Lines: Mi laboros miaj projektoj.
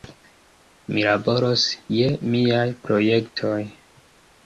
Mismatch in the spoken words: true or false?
true